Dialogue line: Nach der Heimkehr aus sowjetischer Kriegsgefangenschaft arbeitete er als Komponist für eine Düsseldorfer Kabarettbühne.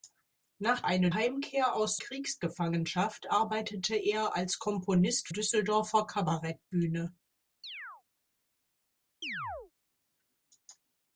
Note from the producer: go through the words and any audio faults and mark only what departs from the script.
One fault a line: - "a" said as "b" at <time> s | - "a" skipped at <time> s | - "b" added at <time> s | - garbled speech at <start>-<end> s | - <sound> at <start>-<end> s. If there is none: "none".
- "der" said as "eine" at 0.8 s
- "sowjetischer" skipped at 2.0 s
- "für eine" skipped at 5.3 s
- chirp at 7.6-8.0 s
- chirp at 9.2-9.7 s